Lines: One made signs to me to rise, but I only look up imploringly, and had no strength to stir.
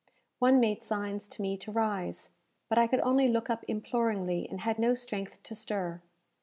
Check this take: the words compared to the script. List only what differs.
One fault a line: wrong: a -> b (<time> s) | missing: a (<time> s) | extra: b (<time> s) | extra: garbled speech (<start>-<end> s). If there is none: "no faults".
extra: could (2.9 s)